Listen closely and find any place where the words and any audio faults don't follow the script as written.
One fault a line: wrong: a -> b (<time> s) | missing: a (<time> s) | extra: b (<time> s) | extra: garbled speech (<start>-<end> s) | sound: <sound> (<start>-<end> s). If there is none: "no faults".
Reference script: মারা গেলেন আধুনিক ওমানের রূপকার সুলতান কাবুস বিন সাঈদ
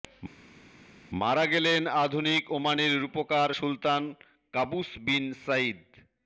no faults